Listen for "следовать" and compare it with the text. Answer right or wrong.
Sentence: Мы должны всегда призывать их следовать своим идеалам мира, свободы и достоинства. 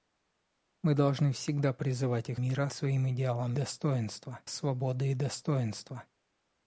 wrong